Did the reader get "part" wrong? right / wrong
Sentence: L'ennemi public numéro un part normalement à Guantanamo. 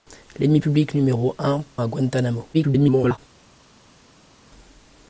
wrong